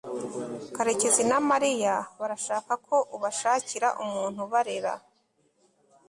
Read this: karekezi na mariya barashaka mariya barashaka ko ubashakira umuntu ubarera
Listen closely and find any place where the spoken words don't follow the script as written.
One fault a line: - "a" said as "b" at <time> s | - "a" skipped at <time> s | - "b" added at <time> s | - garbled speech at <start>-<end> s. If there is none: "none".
- "mariya barashaka" skipped at 2.7 s